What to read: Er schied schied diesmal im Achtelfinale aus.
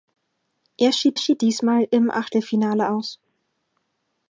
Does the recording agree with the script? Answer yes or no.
yes